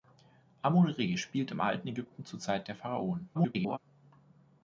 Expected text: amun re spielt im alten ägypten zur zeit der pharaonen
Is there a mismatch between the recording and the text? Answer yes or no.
yes